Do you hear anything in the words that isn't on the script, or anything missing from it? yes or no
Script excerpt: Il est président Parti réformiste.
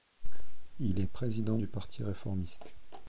yes